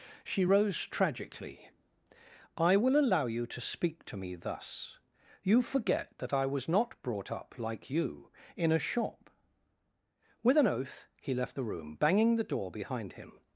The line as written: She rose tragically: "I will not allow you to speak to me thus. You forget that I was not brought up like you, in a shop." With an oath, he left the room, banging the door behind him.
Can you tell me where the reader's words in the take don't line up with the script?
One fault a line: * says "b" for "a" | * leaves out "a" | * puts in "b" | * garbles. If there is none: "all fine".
* leaves out "not"